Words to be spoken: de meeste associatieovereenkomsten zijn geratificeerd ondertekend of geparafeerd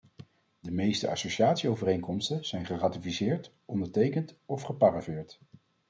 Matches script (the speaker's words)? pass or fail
pass